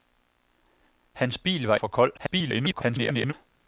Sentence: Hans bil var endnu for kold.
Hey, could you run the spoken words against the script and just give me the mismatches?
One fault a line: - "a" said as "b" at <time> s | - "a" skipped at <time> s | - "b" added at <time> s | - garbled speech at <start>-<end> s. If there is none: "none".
- "endnu" skipped at 1.8 s
- garbled speech at 2.2-3.3 s